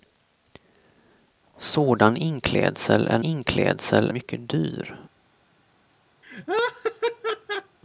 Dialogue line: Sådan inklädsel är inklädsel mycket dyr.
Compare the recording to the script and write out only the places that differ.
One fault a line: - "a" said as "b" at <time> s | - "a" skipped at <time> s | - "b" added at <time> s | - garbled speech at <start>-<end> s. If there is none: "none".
none